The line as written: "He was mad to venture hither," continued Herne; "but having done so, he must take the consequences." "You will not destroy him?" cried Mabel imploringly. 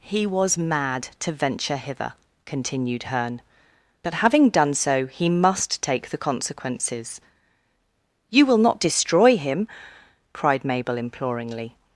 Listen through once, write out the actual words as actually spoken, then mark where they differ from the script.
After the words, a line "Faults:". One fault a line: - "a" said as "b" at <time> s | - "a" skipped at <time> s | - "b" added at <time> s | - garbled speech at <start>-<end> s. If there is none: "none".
"He was mad to venture hither," continued Herne; "but having done so, he must take the consequences." "You will not destroy him?" cried Mabel imploringly.
Faults:
none